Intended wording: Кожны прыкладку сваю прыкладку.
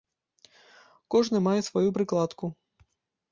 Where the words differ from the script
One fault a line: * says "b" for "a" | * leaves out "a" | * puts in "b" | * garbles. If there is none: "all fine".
* says "мае" for "прыкладку"